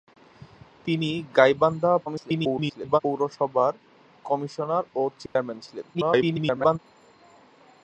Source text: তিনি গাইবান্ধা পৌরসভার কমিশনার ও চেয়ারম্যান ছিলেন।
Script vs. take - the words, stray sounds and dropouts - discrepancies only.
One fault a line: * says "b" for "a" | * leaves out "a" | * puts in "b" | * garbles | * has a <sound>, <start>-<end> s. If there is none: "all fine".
* garbles
* has a dropout, 5.3-5.4 s
* garbles